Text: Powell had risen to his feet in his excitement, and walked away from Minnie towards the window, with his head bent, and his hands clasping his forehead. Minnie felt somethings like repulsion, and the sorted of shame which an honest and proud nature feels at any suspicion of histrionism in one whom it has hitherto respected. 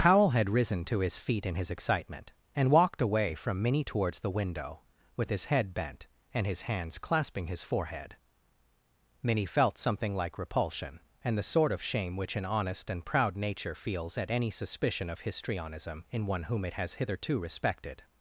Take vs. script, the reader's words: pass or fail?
fail